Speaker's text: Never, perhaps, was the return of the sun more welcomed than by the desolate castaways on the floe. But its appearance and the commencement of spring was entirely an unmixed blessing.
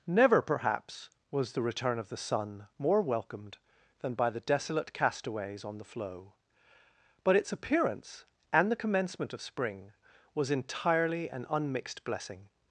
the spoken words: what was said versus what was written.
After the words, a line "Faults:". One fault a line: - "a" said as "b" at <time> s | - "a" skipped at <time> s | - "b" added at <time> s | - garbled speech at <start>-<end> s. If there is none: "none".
Never, perhaps, was the return of the sun more welcomed than by the desolate castaways on the floe. But its appearance and the commencement of spring was entirely an unmixed blessing.
Faults:
none